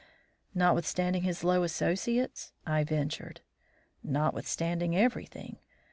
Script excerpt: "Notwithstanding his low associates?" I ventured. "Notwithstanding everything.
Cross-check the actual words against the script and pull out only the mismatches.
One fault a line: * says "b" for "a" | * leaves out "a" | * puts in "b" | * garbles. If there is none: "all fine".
all fine